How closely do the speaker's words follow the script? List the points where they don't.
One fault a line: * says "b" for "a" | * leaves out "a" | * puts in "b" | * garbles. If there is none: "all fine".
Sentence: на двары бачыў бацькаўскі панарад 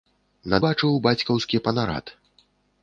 * leaves out "двары"